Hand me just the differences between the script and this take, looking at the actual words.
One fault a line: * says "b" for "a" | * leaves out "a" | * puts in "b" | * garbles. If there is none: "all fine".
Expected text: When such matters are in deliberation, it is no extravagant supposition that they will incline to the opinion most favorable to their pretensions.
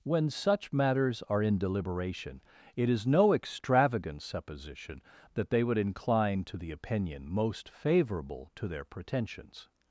* says "would" for "will"